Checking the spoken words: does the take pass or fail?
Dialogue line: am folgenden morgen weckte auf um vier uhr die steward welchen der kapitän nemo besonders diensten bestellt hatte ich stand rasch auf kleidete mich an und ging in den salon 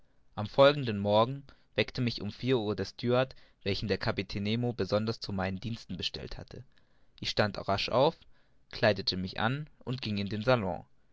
fail